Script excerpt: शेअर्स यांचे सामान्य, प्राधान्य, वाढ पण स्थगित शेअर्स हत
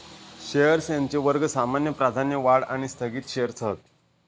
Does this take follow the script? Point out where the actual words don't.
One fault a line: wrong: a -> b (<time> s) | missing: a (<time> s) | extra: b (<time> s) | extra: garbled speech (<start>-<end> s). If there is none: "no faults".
extra: वर्ग (1.2 s)
wrong: पण -> आणि (2.6 s)